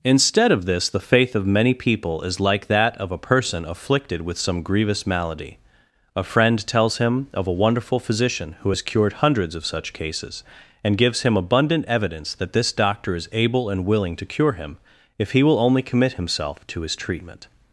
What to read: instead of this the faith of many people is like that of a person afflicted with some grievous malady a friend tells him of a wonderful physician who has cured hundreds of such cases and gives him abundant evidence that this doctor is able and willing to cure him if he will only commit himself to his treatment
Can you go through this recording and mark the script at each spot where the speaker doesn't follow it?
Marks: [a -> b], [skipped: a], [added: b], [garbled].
instead of this the faith of many people is like that of a person afflicted with some grievous malady a friend tells him of a wonderful physician who has cured hundreds of such cases and gives him abundant evidence that this doctor is able and willing to cure him if he will only commit himself to his treatment